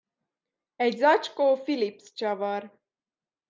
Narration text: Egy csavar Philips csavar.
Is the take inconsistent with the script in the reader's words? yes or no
yes